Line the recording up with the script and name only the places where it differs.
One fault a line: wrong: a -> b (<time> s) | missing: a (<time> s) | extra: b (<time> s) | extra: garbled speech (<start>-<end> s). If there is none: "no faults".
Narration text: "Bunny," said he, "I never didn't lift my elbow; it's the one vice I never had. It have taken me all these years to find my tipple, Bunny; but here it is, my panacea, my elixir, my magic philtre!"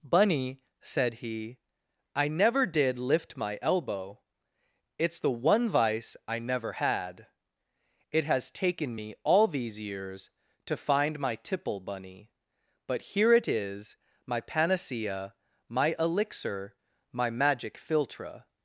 wrong: didn't -> did (2.6 s)
wrong: have -> has (8.2 s)